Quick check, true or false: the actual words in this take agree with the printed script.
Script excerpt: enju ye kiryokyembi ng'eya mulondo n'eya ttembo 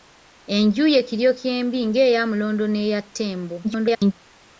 false